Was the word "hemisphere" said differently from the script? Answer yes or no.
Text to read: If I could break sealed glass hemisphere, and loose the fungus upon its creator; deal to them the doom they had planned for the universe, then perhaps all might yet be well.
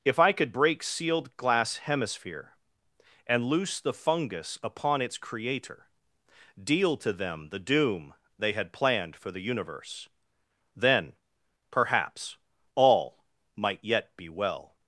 no